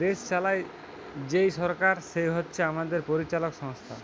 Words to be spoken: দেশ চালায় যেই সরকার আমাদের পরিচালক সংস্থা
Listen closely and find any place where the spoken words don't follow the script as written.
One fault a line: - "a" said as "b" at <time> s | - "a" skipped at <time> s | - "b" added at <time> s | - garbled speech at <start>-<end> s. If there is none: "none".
- "সে হচ্ছে" added at 2.1 s